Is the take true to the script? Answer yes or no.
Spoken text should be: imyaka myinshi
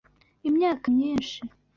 yes